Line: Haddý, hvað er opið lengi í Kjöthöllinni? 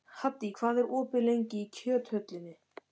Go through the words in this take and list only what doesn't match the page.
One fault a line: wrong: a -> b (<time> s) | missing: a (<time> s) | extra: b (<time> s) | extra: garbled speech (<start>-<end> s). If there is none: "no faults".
no faults